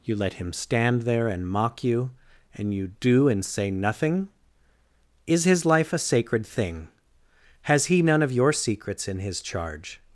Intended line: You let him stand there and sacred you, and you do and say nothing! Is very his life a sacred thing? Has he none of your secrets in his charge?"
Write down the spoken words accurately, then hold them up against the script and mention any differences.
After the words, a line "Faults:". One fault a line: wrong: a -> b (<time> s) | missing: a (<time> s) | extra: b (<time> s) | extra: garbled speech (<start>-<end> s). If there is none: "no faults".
You let him stand there and mock you, and you do and say nothing! Is his life a sacred thing? Has he none of your secrets in his charge?"
Faults:
wrong: sacred -> mock (1.5 s)
missing: very (5.4 s)